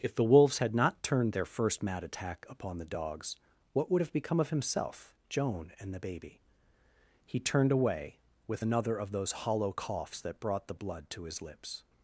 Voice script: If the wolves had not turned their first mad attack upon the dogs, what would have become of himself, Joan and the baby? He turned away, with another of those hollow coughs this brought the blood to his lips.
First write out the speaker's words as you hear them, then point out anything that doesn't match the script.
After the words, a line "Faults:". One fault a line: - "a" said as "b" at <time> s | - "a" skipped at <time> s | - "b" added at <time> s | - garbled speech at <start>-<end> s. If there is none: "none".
If the wolves had not turned their first mad attack upon the dogs, what would have become of himself, Joan and the baby? He turned away, with another of those hollow coughs that brought the blood to his lips.
Faults:
- "this" said as "that" at 10.2 s